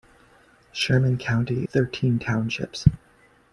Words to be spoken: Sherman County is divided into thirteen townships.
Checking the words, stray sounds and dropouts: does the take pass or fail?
fail